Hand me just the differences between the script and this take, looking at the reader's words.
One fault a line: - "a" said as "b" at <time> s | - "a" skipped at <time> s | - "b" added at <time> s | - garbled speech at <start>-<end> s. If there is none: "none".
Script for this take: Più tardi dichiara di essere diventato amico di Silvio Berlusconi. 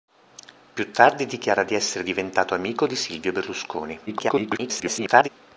- garbled speech at 4.1-5.3 s